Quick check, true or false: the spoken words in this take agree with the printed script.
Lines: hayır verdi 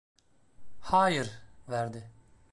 true